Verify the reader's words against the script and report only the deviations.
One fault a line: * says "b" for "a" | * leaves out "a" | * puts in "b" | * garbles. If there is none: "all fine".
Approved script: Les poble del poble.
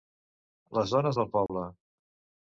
* says "dones" for "poble"